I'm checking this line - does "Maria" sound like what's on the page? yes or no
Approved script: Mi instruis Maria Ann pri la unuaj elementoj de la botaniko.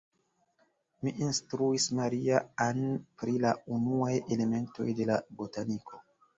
yes